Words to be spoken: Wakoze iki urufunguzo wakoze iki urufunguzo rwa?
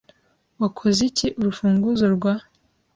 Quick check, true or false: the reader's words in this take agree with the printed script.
false